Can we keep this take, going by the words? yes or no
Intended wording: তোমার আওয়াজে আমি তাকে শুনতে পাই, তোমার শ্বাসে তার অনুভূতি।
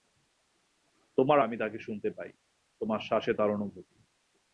no